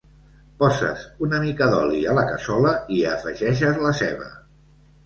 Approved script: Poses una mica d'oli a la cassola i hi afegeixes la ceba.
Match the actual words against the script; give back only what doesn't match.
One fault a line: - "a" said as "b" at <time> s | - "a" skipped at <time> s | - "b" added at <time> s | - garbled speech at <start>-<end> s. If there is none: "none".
none